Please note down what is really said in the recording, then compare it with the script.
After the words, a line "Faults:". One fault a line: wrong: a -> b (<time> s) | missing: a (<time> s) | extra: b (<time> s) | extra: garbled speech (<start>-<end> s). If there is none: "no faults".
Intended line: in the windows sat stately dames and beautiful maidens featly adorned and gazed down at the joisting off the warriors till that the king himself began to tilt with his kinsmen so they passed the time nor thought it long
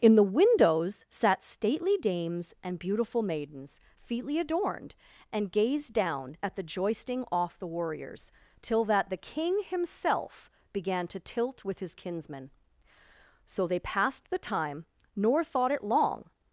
in the windows sat stately dames and beautiful maidens featly adorned and gazed down at the joisting off the warriors till that the king himself began to tilt with his kinsmen so they passed the time nor thought it long
Faults:
no faults